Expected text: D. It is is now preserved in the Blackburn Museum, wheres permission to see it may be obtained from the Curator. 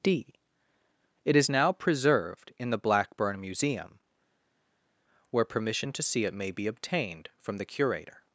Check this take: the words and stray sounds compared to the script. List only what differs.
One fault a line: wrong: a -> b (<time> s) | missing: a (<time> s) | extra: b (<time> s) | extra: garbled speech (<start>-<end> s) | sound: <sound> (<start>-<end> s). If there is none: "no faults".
missing: is (1.5 s)
wrong: wheres -> where (5.3 s)